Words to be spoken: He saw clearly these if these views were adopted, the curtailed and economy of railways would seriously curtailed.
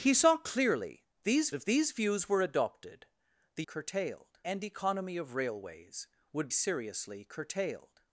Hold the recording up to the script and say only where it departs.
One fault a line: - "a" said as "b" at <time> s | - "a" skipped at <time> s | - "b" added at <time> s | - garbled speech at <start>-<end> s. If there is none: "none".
none